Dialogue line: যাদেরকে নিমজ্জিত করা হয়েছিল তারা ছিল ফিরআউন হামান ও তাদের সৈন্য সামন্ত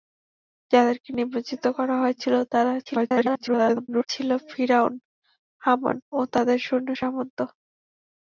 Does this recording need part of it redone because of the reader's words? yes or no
yes